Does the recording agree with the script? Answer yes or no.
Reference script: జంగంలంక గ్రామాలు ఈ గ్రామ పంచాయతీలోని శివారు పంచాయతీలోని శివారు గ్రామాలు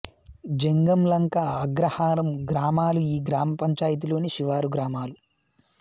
no